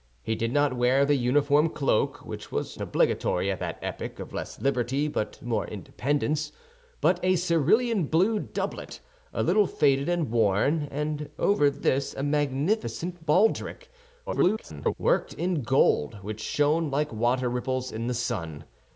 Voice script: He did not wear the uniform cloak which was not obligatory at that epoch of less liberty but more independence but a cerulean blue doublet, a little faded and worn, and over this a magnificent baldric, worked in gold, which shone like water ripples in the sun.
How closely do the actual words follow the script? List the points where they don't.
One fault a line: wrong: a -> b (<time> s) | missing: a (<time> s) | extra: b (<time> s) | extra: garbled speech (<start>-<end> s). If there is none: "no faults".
missing: not (2.8 s)
extra: garbled speech (14.3-14.9 s)